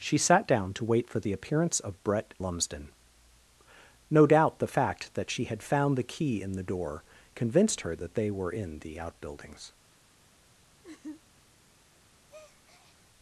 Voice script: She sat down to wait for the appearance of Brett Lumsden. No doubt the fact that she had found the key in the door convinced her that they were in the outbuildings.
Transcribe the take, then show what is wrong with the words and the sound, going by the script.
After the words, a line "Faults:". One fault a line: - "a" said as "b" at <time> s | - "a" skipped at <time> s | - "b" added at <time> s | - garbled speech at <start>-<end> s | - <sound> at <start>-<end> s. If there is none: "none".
She sat down to wait for the appearance of Brett Lumsden. No doubt the fact that she had found the key in the door convinced her that they were in the outbuildings.
Faults:
- laugh at 10.8-11.2 s
- breath at 12.3-13.1 s